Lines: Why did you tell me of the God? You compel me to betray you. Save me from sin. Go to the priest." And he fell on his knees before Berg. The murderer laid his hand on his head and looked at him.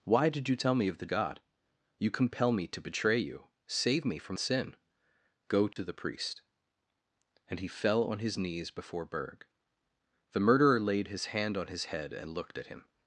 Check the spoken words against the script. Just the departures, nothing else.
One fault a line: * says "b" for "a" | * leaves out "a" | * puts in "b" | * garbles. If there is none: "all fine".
all fine